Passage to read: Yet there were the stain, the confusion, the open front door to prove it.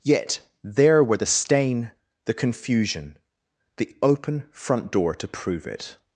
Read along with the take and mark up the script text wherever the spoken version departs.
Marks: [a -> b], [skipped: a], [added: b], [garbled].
Yet there were the stain, the confusion, the open front door to prove it.